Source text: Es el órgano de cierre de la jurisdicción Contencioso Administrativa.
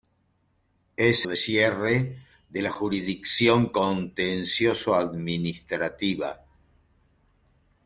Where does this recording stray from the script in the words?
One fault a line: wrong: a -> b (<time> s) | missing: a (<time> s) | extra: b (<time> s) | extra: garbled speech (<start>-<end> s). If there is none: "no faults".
missing: el órgano (1.3 s)